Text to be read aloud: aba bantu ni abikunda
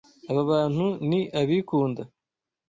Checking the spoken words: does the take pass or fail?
pass